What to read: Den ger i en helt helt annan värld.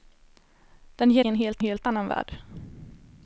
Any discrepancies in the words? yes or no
no